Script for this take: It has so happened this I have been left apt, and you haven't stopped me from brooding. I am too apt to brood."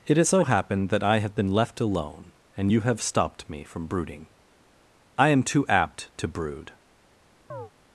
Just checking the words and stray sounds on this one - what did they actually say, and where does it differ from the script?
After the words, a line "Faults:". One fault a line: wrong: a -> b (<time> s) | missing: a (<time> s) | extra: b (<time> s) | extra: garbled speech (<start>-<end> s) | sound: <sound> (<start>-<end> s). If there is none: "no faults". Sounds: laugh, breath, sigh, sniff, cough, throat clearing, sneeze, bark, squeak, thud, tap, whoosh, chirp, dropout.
It has so happened that I have been left alone, and you have stopped me from brooding. I am too apt to brood."
Faults:
wrong: this -> that (0.9 s)
wrong: apt -> alone (1.8 s)
wrong: haven't -> have (2.8 s)
sound: chirp (7.5-7.7 s)